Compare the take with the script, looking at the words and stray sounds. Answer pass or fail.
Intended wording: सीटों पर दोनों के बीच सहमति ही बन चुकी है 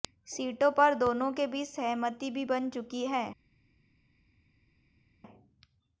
fail